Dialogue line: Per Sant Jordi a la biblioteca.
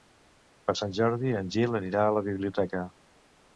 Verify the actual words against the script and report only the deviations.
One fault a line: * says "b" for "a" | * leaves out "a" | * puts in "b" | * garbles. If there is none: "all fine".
* puts in "en Gil anirà"